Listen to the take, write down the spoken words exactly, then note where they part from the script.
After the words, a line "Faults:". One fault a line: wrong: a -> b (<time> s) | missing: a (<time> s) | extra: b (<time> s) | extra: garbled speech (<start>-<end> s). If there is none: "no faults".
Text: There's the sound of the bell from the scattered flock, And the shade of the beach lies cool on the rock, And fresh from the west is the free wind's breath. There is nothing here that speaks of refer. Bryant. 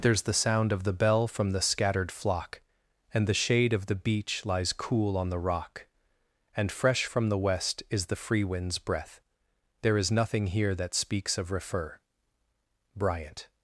There's the sound of the bell from the scattered flock, And the shade of the beach lies cool on the rock, And fresh from the west is the free wind's breath. There is nothing here that speaks of refer. Bryant.
Faults:
no faults